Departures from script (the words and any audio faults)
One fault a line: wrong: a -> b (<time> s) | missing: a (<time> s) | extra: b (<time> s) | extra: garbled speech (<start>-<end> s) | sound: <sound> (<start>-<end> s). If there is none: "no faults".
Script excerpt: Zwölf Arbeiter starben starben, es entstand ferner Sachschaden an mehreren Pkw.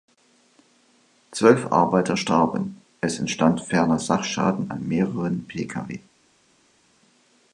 missing: starben (2.8 s)